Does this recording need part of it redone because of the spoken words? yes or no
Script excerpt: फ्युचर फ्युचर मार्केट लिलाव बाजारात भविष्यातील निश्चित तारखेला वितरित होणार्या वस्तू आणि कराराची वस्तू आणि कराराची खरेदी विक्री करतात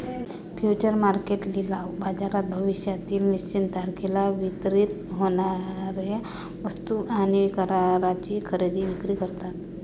yes